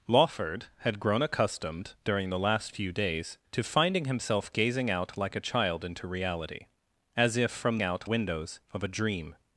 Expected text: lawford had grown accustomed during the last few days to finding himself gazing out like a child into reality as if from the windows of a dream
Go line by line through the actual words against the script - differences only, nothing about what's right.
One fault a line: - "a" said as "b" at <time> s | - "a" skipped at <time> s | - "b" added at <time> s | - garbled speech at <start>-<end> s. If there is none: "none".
- "the" said as "out" at 7.8 s